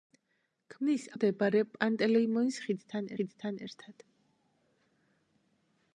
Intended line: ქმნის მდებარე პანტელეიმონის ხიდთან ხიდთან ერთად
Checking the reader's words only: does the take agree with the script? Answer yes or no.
yes